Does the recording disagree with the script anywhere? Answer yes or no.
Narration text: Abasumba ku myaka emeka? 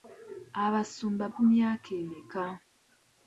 no